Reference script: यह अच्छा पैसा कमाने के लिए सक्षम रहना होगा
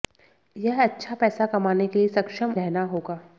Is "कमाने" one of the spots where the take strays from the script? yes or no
no